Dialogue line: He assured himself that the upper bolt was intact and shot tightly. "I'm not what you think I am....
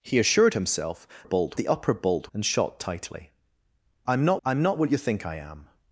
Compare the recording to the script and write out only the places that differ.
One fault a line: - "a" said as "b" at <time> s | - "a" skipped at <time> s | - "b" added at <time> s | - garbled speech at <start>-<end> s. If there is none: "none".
- "that" said as "bolt" at 1.2 s
- "was intact" skipped at 2.3 s
- "I'm not" added at 4.5 s